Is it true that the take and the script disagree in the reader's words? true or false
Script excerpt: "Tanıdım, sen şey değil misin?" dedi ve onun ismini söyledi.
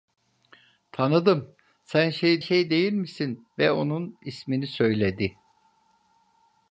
true